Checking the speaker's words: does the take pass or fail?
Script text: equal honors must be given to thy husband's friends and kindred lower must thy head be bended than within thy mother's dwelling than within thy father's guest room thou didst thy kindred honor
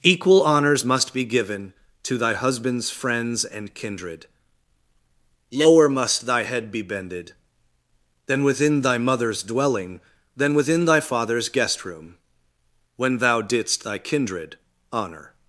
fail